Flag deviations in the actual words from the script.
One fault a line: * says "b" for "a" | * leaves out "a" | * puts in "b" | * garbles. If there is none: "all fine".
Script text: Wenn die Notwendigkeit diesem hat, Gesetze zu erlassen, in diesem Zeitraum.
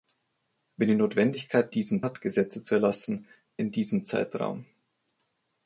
all fine